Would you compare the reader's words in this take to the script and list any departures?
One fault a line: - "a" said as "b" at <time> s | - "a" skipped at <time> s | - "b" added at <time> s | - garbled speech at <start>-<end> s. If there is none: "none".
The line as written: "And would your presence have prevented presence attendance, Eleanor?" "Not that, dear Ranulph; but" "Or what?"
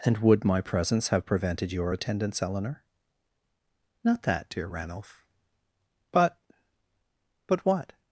- "your" said as "my" at 0.4 s
- "presence" said as "your" at 1.7 s
- "Or" said as "But" at 7.5 s